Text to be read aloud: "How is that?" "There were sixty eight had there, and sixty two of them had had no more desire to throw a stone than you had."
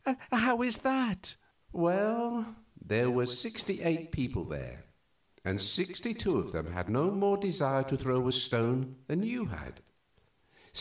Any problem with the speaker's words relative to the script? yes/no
yes